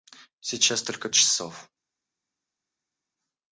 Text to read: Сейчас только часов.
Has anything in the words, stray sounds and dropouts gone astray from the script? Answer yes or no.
no